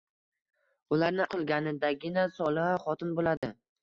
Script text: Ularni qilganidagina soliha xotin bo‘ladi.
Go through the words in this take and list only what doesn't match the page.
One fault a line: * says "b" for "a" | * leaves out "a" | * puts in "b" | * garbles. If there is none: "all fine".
all fine